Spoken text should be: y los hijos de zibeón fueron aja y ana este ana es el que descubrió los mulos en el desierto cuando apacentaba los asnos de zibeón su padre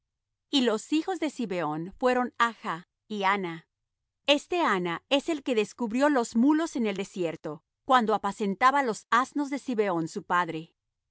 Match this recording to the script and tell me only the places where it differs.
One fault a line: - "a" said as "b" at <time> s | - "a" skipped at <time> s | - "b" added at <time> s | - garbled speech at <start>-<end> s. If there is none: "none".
none